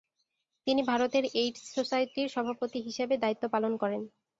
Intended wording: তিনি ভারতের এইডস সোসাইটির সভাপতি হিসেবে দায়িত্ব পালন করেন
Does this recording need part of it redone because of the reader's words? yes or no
no